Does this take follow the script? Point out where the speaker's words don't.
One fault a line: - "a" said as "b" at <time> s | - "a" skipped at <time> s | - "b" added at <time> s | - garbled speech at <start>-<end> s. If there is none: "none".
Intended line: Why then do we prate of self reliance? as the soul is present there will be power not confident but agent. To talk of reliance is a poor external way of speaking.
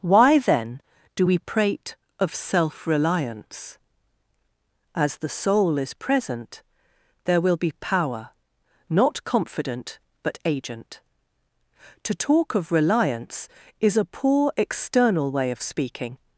none